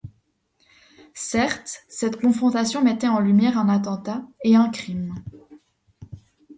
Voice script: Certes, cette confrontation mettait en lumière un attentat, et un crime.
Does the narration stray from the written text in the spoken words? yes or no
no